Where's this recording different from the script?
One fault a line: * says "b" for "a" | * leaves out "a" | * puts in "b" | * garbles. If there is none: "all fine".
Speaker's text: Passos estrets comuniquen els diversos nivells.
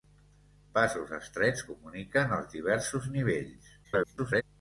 * garbles